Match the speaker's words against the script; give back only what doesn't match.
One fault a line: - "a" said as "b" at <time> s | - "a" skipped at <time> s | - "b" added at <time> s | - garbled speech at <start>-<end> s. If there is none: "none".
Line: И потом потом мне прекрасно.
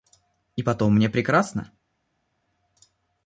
- "потом" skipped at 0.9 s